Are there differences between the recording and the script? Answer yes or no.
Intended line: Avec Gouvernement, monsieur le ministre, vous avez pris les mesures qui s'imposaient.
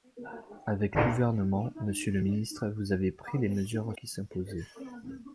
no